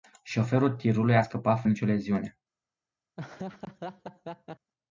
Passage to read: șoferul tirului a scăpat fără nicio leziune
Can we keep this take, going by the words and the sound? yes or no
no